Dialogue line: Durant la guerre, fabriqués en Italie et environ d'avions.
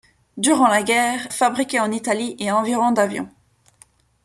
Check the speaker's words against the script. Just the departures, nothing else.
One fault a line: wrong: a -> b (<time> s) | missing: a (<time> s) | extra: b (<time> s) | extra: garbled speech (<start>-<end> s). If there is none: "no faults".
no faults